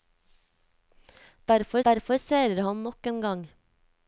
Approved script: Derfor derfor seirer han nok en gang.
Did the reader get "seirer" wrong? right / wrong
right